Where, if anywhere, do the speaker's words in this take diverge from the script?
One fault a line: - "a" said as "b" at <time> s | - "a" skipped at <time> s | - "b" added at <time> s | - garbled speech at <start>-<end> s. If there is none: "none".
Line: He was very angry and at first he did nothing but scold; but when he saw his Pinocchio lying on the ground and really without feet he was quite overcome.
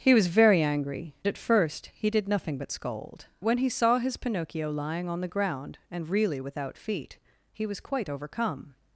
- "and" skipped at 1.1 s
- "but" skipped at 3.3 s